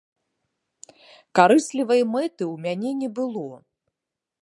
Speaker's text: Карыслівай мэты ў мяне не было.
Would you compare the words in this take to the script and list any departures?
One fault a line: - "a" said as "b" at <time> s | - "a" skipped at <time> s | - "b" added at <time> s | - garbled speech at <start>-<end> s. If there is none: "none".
none